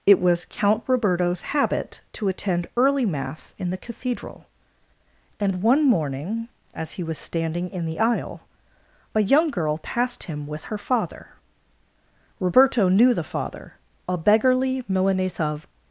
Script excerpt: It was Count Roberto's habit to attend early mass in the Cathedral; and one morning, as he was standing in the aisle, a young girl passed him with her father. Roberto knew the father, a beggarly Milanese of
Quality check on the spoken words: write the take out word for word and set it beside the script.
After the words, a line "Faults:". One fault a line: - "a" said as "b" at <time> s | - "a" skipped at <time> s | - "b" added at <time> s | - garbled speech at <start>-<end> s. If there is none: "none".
It was Count Roberto's habit to attend early mass in the Cathedral; and one morning, as he was standing in the aisle, a young girl passed him with her father. Roberto knew the father, a beggarly Milanese of
Faults:
none